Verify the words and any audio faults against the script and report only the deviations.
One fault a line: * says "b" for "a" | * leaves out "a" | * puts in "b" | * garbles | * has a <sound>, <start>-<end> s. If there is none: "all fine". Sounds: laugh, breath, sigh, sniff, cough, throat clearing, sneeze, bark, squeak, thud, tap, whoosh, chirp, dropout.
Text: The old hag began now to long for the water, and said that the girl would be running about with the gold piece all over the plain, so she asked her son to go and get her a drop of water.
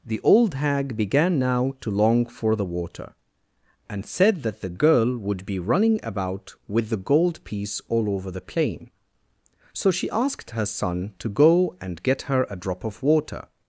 all fine